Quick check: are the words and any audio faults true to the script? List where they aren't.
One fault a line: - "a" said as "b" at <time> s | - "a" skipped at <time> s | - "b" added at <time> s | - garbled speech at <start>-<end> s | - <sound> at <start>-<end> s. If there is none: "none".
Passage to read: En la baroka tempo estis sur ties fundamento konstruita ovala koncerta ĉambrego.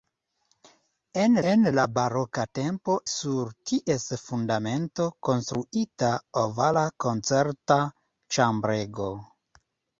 - "en" added at 1.5 s
- "estis" skipped at 3.0 s